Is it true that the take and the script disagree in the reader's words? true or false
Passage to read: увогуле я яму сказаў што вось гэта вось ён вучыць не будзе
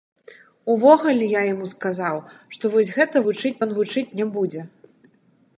true